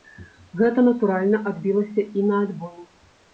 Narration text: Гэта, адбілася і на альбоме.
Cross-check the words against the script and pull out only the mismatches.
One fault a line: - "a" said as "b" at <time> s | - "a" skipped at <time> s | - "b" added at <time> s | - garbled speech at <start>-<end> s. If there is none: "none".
- "натуральна" added at 0.9 s